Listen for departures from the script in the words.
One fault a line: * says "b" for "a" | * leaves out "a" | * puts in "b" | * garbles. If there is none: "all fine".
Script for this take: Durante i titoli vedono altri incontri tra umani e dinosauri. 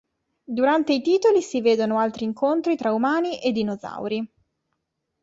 * puts in "si"